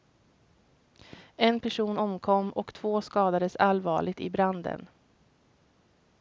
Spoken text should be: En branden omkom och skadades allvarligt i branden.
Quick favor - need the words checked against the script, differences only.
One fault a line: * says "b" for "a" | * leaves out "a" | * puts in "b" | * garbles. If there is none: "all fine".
* says "person" for "branden"
* puts in "två"